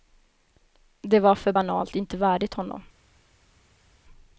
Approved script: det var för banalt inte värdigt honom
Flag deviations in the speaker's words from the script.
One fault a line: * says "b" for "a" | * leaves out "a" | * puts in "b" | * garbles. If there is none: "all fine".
all fine